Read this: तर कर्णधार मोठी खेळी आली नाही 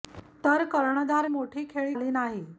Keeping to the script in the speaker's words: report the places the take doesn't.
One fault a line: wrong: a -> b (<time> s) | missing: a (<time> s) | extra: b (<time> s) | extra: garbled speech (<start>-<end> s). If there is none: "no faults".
no faults